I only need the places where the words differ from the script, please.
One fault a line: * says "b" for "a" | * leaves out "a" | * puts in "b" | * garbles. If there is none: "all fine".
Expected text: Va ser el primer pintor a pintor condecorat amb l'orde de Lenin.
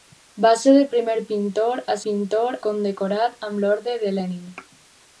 all fine